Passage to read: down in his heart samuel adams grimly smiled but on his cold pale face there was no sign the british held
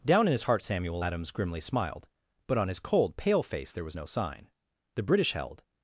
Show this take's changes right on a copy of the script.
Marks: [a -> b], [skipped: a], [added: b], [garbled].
down in his heart samuel adams grimly smiled but on his cold pale face there was no sign the british held